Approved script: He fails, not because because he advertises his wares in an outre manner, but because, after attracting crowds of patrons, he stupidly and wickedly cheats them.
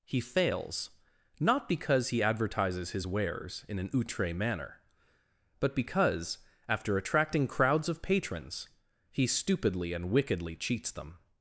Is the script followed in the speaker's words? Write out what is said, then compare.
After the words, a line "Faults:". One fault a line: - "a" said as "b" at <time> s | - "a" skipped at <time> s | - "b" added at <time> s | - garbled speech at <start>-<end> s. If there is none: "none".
He fails, not because he advertises his wares in an outre manner, but because, after attracting crowds of patrons, he stupidly and wickedly cheats them.
Faults:
- "because" skipped at 2.1 s